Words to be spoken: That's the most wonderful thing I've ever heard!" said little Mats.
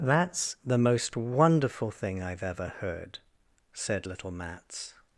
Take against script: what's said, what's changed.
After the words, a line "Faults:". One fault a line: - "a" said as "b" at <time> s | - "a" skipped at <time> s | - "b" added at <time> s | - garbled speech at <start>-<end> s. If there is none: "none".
That's the most wonderful thing I've ever heard!" said little Mats.
Faults:
none